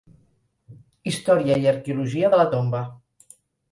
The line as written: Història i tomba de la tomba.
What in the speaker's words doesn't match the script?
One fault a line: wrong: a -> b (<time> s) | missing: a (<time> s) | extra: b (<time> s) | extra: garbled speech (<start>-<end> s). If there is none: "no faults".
wrong: tomba -> arqueologia (1.7 s)